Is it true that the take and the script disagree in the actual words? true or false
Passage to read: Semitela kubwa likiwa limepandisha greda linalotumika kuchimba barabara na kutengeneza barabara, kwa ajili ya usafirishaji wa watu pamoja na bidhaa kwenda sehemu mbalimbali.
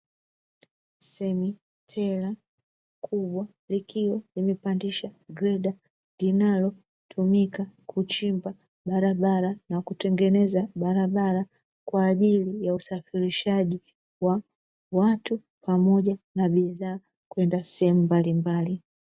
false